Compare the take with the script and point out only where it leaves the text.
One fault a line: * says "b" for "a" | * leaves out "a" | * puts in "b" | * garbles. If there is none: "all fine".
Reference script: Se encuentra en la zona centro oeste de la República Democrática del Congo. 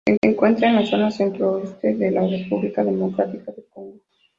* puts in "se"